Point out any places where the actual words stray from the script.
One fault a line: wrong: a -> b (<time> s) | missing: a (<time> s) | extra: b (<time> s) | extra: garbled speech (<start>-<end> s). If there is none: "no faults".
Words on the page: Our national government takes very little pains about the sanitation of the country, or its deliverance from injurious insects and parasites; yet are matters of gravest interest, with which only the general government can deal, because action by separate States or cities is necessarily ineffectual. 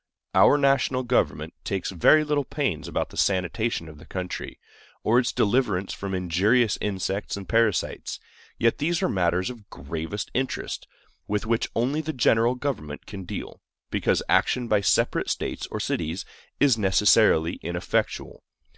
extra: these (8.8 s)